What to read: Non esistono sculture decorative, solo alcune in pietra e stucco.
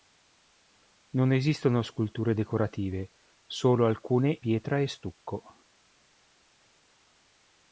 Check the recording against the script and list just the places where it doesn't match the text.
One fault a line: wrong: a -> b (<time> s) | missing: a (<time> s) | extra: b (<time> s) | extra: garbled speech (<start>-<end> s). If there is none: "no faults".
missing: in (4.3 s)